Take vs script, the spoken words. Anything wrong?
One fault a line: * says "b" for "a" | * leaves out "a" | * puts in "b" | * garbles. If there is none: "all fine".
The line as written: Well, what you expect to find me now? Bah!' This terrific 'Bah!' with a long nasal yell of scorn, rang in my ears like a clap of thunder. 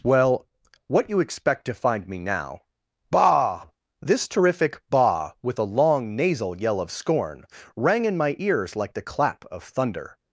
* says "the" for "a"